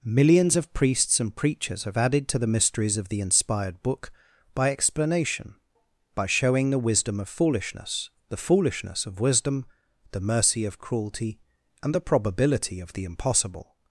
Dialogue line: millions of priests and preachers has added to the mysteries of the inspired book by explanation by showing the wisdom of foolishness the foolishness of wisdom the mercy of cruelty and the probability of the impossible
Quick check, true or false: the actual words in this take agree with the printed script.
false